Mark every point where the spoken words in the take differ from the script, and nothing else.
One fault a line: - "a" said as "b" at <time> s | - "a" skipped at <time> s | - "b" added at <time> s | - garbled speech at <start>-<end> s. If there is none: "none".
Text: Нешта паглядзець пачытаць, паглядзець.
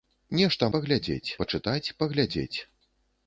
none